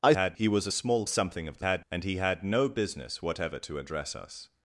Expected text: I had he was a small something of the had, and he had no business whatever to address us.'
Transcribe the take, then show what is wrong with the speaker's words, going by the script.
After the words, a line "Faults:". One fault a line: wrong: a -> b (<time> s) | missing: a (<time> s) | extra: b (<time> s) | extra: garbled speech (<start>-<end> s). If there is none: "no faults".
I had he was a small something of the had, and he had no business whatever to address us.'
Faults:
no faults